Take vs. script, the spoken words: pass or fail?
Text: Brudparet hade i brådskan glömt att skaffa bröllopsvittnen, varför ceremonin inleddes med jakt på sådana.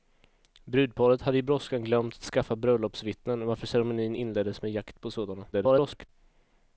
fail